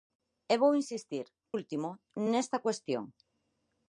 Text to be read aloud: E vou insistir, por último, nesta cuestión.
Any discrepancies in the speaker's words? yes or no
yes